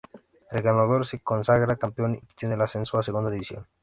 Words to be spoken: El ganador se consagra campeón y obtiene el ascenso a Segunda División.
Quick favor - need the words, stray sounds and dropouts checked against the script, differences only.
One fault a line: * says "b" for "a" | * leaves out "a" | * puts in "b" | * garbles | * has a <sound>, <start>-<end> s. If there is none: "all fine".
* leaves out "y"